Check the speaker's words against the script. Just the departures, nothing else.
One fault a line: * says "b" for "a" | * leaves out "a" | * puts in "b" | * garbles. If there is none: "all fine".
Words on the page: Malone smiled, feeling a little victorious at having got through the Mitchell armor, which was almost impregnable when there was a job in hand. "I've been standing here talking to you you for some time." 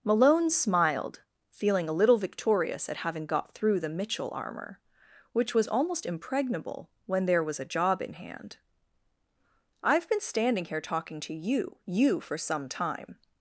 all fine